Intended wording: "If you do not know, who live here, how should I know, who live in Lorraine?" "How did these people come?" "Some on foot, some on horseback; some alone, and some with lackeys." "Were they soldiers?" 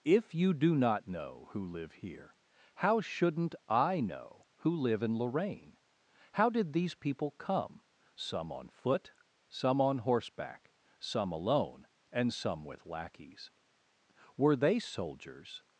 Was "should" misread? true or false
true